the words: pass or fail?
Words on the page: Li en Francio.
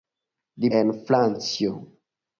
pass